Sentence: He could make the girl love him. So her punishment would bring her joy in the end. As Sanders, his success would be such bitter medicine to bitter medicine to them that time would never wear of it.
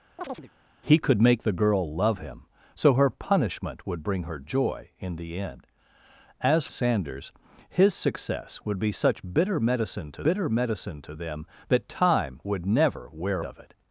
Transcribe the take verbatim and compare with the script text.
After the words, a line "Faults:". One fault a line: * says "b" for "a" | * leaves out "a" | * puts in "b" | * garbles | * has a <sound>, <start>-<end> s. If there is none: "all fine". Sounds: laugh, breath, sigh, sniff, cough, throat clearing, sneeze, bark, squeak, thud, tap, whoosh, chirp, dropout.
He could make the girl love him. So her punishment would bring her joy in the end. As Sanders, his success would be such bitter medicine to bitter medicine to them that time would never wear of it.
Faults:
* has a chirp, 0.2-0.5 s